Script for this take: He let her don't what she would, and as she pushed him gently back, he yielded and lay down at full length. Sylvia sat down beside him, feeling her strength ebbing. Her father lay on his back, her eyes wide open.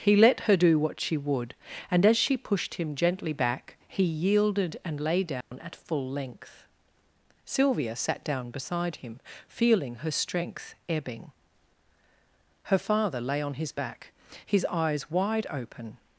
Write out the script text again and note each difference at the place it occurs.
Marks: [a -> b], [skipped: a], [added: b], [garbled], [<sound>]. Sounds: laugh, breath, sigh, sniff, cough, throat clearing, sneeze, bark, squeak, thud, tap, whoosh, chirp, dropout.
He let her [don't -> do] what she would, and as she pushed him gently back, he yielded and lay down [dropout] at full length. Sylvia sat down beside him, feeling her strength ebbing. Her father lay on his back, [her -> his] eyes wide open.